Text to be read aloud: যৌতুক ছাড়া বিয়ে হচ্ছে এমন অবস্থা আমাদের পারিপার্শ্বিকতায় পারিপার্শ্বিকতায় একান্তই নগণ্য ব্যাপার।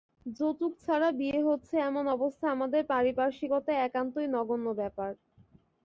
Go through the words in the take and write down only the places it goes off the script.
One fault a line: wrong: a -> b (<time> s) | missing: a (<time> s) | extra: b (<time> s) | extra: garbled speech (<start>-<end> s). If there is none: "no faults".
missing: পারিপার্শ্বিকতায় (3.8 s)